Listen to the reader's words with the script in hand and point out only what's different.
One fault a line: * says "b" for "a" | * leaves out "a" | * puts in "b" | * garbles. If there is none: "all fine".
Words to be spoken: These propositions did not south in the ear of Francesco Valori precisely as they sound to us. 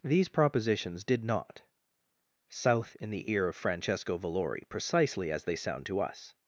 all fine